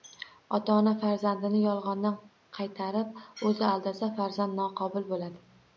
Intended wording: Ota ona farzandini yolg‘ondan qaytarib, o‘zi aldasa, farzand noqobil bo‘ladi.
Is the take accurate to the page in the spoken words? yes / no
yes